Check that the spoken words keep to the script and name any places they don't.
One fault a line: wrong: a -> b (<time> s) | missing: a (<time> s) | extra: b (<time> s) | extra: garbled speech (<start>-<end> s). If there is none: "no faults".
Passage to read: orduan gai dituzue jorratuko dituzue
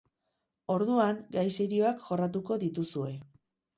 wrong: dituzue -> serioak (1.6 s)